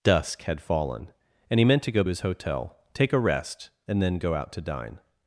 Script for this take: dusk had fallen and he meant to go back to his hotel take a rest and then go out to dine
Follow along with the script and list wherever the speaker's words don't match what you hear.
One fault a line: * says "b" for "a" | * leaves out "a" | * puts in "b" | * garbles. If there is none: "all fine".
* leaves out "back to"